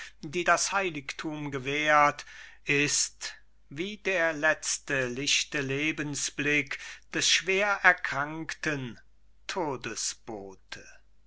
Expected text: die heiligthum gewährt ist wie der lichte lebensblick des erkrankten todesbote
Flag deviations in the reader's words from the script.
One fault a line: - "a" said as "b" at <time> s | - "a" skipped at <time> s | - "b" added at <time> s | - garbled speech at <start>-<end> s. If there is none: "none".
- "das" added at 0.5 s
- "letzte" added at 4.3 s
- "schwer" added at 7.3 s